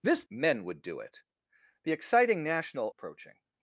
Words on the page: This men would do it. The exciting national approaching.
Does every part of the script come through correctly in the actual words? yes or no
yes